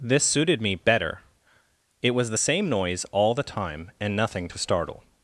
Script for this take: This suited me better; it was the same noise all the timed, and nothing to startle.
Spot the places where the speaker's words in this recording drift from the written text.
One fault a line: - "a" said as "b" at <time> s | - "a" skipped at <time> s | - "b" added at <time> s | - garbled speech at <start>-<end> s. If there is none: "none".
- "timed" said as "time" at 3.4 s